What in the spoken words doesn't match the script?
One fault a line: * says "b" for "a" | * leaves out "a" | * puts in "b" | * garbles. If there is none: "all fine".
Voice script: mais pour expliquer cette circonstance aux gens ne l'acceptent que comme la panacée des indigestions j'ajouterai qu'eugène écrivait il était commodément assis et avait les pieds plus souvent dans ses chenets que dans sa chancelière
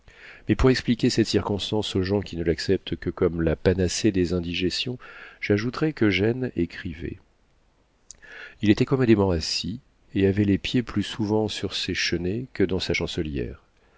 * puts in "qui"
* says "sur" for "dans"